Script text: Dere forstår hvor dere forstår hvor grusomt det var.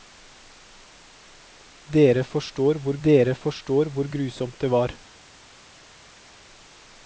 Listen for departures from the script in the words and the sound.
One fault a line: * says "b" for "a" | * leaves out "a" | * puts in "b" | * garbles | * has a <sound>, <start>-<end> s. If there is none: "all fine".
all fine